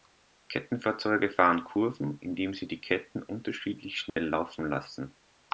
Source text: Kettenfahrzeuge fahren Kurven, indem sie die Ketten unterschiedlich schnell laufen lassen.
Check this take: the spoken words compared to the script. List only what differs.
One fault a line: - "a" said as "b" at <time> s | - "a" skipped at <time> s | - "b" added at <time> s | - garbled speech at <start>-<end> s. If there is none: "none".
none